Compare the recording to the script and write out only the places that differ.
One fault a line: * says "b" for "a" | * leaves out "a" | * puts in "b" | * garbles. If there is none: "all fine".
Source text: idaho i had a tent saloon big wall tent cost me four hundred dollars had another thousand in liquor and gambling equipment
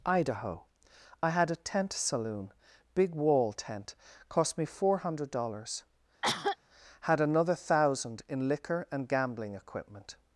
all fine